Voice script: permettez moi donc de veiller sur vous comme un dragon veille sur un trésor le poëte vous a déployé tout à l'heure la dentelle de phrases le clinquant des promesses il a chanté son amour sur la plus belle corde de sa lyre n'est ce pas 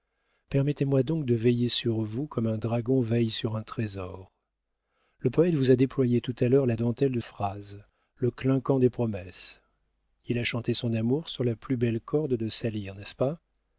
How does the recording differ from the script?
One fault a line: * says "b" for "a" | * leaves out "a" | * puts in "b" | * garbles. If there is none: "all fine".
all fine